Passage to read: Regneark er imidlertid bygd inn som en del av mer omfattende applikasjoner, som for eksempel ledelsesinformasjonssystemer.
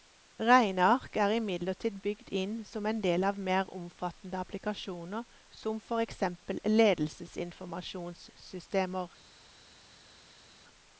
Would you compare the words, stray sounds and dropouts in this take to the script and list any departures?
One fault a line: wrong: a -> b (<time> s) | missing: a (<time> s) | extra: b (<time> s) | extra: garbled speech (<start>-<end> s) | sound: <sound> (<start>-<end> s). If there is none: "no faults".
no faults